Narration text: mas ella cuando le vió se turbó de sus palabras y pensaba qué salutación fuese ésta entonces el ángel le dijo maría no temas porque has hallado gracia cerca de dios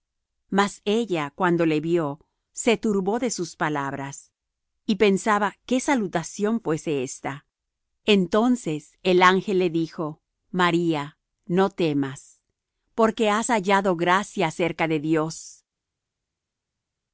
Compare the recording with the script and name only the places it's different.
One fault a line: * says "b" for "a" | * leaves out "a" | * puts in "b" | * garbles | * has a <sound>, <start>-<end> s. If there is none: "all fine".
all fine